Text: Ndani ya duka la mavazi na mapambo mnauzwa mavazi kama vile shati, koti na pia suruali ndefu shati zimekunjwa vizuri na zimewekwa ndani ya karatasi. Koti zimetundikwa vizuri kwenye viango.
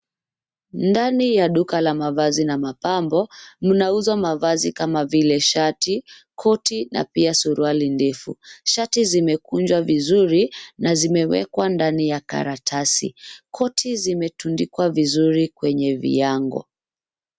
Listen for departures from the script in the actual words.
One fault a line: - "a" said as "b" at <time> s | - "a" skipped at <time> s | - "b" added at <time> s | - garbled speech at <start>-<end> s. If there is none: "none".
none